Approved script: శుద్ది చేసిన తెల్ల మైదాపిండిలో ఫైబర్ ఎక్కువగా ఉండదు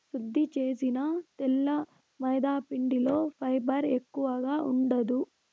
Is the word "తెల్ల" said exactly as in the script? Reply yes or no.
yes